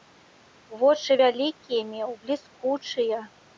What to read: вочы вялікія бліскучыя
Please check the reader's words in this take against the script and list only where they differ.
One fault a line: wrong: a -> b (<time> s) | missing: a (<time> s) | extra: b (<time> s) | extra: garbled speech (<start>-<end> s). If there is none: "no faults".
extra: меў (1.9 s)